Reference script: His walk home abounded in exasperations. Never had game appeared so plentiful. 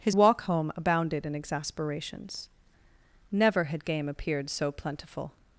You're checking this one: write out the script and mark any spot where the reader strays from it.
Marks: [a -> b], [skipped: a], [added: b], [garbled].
His walk home abounded in exasperations. Never had game appeared so plentiful.